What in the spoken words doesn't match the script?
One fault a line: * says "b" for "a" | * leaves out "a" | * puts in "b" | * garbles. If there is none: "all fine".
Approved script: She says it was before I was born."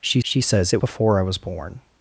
* puts in "she"
* leaves out "was"